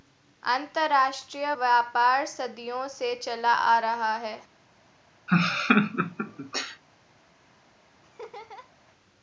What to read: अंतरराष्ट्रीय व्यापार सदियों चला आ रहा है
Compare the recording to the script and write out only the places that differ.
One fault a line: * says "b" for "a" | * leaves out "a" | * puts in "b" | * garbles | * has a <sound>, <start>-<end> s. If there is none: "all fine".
* puts in "से"
* has a laugh, 5.3-6.8 s
* has a laugh, 8.0-8.7 s